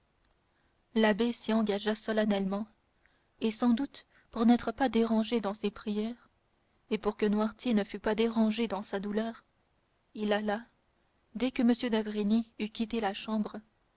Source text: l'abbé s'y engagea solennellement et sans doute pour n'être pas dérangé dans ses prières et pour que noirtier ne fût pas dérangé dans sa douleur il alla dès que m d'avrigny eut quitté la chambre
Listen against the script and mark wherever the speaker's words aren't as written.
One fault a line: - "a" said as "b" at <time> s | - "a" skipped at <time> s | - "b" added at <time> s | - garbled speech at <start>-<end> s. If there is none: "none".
none